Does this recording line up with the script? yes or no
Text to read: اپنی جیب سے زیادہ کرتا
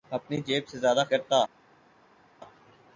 yes